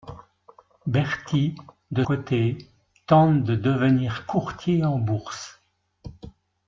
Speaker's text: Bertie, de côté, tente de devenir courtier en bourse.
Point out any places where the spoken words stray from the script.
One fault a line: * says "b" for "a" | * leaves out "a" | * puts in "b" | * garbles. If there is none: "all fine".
all fine